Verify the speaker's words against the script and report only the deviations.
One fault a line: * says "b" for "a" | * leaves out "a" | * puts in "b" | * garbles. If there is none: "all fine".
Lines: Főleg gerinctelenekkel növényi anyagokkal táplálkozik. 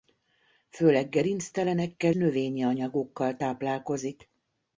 all fine